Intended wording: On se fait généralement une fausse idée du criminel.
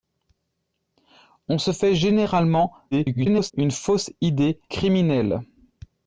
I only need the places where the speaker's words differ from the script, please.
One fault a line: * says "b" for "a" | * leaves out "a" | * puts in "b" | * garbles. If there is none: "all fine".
* garbles
* leaves out "du"